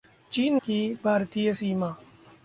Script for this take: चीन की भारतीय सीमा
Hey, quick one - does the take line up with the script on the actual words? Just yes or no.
yes